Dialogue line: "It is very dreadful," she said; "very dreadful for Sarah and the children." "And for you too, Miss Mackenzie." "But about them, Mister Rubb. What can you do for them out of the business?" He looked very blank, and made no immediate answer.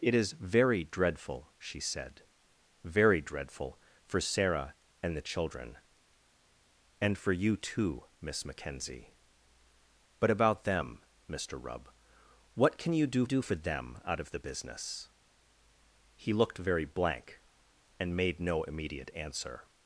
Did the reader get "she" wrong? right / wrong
right